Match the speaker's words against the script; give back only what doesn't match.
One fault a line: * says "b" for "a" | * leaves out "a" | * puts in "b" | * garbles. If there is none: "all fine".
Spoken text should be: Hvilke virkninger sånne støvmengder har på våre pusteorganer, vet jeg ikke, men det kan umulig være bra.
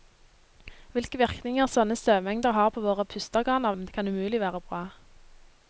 * leaves out "vet jeg ikke"